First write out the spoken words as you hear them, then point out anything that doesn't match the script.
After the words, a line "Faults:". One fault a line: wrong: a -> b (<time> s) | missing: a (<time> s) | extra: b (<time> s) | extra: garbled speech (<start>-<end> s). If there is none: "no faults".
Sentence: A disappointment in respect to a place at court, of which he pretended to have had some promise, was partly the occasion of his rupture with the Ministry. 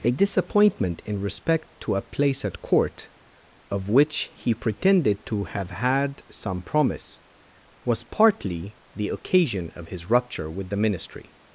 A disappointment in respect to a place at court, of which he pretended to have had some promise, was partly the occasion of his rupture with the Ministry.
Faults:
no faults